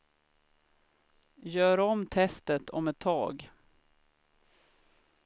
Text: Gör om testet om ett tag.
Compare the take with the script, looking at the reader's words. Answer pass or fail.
pass